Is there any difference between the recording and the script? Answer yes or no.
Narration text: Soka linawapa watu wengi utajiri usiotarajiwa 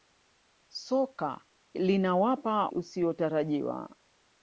yes